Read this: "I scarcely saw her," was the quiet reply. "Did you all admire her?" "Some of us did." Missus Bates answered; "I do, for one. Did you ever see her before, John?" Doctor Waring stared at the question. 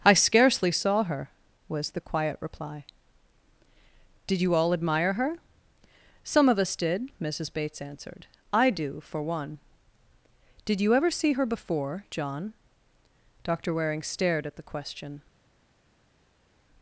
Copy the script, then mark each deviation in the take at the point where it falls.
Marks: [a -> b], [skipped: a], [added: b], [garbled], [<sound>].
"I scarcely saw her," was the quiet reply. "Did you all admire her?" "Some of us did." Missus Bates answered; "I do, for one. Did you ever see her before, John?" Doctor Waring stared at the question.